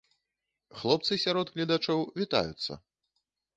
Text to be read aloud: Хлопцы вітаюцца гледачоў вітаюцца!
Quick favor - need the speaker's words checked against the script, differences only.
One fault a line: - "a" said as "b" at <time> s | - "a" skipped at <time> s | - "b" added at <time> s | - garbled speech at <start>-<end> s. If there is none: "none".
- "вітаюцца" said as "сярод" at 1.2 s